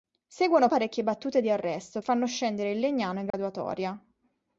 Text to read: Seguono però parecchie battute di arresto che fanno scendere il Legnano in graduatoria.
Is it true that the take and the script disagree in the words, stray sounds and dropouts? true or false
true